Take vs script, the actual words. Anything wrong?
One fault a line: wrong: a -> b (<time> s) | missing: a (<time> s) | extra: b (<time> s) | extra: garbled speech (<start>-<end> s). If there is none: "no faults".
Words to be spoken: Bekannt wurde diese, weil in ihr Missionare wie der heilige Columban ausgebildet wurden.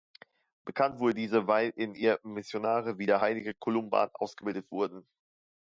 no faults